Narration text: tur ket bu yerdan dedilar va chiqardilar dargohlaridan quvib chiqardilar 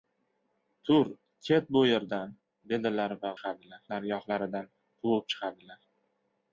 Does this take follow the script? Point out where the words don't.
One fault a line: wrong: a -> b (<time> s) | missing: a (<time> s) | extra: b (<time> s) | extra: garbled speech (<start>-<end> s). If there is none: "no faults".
no faults